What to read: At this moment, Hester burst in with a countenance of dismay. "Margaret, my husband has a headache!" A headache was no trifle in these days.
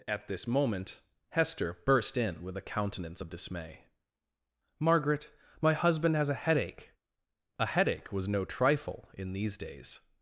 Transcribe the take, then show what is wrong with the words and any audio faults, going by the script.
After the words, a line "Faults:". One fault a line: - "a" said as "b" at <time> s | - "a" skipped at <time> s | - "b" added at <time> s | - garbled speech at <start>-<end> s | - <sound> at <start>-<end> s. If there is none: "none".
At this moment, Hester burst in with a countenance of dismay. "Margaret, my husband has a headache!" A headache was no trifle in these days.
Faults:
none